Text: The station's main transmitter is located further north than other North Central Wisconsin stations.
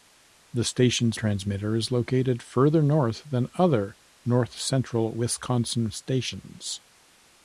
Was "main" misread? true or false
true